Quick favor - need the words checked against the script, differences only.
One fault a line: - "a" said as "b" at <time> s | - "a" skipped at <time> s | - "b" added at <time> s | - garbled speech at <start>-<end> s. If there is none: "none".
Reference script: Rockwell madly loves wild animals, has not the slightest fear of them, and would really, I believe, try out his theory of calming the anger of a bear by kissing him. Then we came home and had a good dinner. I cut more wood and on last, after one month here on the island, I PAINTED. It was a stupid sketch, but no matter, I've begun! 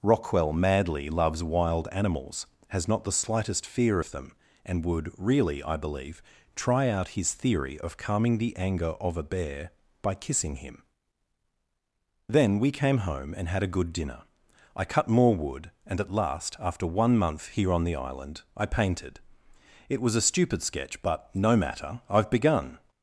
- "on" said as "at" at 16.0 s